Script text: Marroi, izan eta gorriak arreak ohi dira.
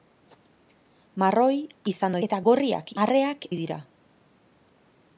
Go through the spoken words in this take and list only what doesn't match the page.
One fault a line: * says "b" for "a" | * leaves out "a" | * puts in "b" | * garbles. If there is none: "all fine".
all fine